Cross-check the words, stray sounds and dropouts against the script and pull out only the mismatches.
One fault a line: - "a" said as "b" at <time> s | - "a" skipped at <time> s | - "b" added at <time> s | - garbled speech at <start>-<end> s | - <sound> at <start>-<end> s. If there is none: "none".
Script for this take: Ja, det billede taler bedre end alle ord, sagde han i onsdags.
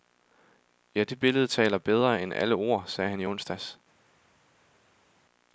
none